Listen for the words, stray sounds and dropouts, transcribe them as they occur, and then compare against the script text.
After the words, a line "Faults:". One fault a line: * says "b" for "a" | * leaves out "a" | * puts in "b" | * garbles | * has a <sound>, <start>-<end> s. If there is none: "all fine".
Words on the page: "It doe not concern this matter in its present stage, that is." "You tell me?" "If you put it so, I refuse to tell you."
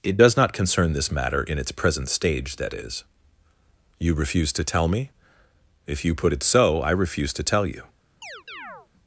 "It does not concern this matter in its present stage, that is." "You refuse to tell me?" "If you put it so, I refuse to tell you."
Faults:
* says "does" for "doe"
* puts in "refuse to"
* has a chirp, 8.2-8.9 s